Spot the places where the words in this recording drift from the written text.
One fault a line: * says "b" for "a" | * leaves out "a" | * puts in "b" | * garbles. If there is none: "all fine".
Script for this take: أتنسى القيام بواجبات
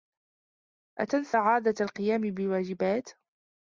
* puts in "عادة"